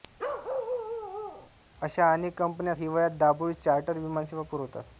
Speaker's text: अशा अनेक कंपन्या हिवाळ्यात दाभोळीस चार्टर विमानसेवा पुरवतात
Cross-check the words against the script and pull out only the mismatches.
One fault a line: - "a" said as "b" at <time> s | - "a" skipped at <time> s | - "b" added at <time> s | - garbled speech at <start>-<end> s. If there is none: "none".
none